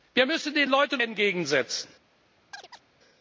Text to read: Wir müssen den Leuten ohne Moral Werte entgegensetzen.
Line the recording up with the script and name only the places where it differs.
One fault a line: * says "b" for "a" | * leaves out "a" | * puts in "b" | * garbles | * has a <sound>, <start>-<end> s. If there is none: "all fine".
* leaves out "ohne Moral Werte"
* has a chirp, 2.5-2.8 s